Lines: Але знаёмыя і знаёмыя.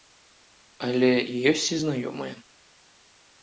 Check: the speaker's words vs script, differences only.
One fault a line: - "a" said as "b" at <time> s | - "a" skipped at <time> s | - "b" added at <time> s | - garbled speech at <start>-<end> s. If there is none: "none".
- "знаёмыя" said as "ёсць" at 1.5 s